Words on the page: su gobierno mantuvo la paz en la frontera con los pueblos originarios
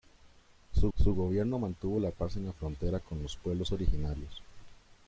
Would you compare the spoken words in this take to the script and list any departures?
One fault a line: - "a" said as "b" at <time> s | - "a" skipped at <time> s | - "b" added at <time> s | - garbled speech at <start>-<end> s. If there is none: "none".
- "su" added at 1.0 s